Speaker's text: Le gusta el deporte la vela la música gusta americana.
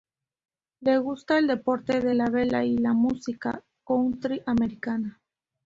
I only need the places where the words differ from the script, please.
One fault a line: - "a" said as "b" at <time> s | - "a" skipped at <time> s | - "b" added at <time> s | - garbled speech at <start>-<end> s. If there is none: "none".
- "de" added at 2.0 s
- "y" added at 2.6 s
- "gusta" said as "country" at 3.8 s